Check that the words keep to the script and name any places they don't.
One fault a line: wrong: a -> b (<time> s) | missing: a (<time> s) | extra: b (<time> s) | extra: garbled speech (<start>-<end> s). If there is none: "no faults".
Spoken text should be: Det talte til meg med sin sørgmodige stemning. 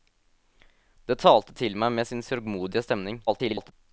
extra: garbled speech (3.3-3.7 s)